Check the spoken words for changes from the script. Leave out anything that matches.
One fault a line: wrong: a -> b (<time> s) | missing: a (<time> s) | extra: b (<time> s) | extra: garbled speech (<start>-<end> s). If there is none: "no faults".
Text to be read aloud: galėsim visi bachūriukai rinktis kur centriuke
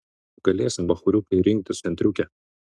missing: visi (0.9 s)
missing: kur (1.8 s)